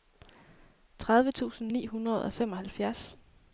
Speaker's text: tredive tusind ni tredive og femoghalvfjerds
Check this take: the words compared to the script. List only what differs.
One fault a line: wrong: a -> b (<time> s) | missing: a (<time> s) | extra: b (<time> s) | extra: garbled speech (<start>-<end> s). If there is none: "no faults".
wrong: tredive -> hundrede (1.9 s)